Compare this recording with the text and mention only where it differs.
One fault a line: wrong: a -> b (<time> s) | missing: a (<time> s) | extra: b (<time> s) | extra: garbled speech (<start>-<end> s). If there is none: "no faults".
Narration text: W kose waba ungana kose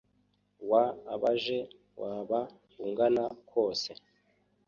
wrong: kose -> abaje (1.1 s)